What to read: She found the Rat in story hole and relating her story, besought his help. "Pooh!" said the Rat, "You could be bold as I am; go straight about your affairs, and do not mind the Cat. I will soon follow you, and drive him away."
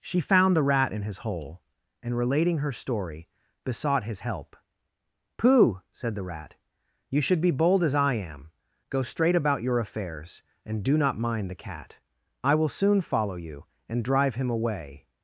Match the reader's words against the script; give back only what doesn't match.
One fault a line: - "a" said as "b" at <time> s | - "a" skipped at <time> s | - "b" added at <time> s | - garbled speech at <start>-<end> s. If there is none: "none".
- "story" said as "his" at 1.0 s
- "could" said as "should" at 7.2 s